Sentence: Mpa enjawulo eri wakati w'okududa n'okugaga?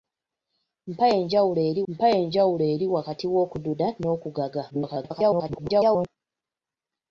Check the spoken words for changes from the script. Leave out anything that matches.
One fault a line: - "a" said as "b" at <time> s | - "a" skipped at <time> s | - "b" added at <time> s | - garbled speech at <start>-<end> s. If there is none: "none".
- "mpa enjawulo eri" added at 1.9 s
- garbled speech at 4.7-6.1 s